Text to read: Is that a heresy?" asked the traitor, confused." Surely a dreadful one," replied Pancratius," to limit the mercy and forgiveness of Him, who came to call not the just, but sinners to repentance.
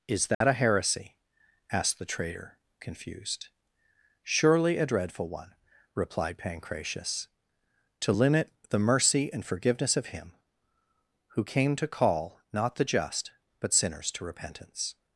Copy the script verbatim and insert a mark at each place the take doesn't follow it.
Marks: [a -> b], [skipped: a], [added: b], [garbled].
Is that a heresy?" asked the traitor, confused." Surely a dreadful one," replied Pancratius," to limit the mercy and forgiveness of Him, who came to call not the just, but sinners to repentance.